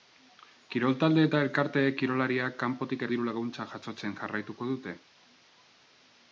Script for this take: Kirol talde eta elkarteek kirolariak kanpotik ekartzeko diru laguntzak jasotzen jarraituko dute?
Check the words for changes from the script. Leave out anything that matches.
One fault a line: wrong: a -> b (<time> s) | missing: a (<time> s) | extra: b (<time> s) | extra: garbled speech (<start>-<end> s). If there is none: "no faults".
missing: ekartzeko (3.0 s)